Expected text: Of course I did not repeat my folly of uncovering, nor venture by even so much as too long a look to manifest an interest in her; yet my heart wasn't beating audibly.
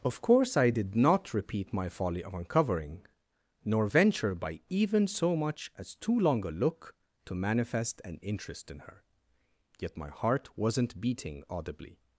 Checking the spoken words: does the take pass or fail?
pass